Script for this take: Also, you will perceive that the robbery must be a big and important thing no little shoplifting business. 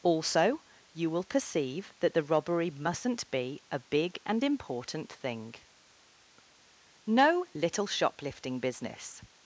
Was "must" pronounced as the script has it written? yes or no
no